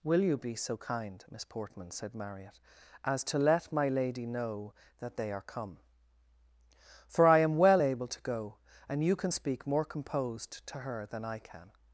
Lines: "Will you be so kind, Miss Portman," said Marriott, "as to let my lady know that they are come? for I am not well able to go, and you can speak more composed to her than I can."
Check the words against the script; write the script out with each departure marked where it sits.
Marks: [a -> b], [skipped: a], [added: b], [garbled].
"Will you be so kind, Miss Portman," said Marriott, "as to let my lady know that they are come? for I am [skipped: not] well able to go, and you can speak more composed to her than I can."